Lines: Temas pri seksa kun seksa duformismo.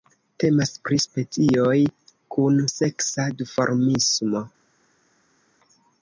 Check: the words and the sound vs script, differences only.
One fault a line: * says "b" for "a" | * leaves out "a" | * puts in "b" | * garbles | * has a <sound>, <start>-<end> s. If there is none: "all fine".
* says "specioj" for "seksa"